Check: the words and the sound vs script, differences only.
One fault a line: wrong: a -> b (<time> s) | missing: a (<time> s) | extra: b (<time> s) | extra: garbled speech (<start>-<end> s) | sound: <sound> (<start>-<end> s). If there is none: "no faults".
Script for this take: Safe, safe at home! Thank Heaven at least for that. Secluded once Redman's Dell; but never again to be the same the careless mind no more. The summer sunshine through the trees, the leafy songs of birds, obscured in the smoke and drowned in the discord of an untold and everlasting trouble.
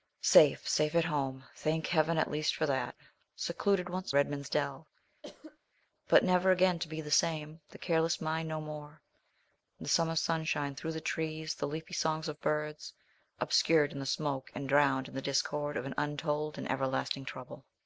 sound: cough (5.2-5.6 s)